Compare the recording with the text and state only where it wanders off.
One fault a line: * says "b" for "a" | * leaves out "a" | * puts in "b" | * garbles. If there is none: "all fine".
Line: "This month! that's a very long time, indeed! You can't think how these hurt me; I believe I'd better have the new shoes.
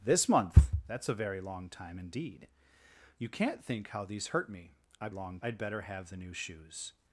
* says "long" for "believe"